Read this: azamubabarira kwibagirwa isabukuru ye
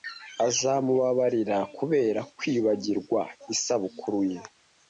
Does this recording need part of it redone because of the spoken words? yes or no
yes